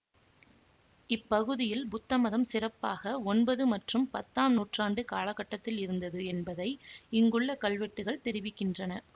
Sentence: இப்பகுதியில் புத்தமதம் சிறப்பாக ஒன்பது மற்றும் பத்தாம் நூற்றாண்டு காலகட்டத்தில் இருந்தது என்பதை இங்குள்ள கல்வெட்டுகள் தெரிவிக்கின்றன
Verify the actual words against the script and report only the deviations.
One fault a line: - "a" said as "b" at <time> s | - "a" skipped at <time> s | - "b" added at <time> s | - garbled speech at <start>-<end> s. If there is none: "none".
none